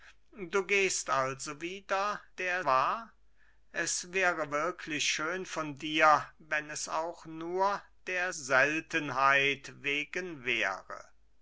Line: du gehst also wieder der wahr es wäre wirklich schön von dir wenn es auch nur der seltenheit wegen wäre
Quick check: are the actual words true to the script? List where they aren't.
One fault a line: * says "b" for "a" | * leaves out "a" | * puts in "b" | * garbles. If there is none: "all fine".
all fine